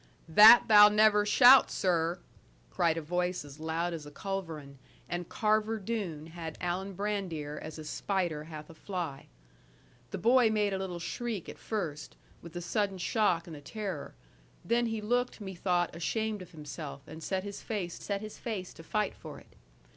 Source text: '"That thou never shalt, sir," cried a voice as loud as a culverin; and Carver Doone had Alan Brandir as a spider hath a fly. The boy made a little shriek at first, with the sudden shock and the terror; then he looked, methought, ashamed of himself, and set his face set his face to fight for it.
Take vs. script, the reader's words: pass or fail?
pass